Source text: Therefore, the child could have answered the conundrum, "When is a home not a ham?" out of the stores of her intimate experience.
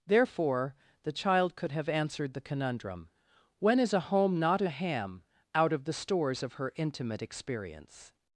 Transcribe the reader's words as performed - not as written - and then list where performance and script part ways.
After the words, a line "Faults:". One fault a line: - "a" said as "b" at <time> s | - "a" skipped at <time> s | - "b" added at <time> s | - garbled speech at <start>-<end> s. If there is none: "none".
Therefore, the child could have answered the conundrum, "When is a home not a ham?" out of the stores of her intimate experience.
Faults:
none